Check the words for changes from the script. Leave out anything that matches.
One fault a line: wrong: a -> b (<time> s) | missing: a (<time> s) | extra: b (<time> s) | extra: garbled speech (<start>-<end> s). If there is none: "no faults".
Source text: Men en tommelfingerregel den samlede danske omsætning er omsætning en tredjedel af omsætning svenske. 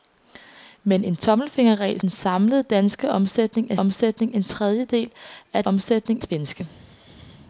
no faults